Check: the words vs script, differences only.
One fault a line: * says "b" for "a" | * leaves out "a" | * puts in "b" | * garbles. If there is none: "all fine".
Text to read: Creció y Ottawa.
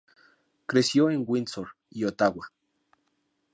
* puts in "en Windsor"